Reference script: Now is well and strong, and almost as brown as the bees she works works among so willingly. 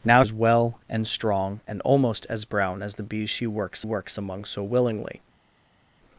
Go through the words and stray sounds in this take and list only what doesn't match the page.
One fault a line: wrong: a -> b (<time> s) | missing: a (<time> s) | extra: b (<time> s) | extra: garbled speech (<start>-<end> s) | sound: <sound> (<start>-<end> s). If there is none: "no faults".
no faults